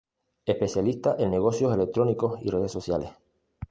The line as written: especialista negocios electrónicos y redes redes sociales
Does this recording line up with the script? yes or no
no